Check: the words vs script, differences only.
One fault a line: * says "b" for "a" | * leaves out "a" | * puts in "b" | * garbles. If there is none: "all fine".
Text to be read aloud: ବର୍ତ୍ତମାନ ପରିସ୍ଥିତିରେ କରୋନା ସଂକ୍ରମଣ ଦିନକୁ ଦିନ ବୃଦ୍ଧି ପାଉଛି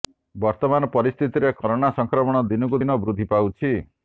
all fine